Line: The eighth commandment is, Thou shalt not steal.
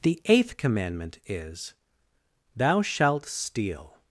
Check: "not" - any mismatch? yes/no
yes